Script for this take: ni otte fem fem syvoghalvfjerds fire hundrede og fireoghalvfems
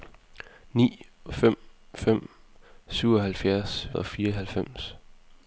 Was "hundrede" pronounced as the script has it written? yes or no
no